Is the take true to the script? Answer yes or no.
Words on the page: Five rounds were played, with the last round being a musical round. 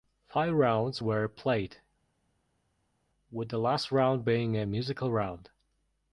yes